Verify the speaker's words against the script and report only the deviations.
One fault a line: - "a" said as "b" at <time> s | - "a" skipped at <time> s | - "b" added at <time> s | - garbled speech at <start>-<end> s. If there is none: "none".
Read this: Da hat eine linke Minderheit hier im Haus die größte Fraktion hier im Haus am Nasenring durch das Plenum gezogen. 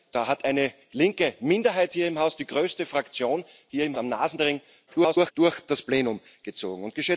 - "Haus" skipped at 4.0 s
- garbled speech at 4.9-5.3 s